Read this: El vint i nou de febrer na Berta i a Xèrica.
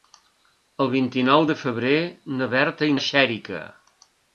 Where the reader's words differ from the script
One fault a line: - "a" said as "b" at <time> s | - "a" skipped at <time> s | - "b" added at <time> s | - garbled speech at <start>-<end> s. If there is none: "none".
none